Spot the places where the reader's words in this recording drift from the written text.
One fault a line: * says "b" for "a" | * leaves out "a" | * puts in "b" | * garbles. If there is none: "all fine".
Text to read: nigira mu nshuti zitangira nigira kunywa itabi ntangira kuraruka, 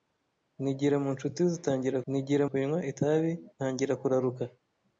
all fine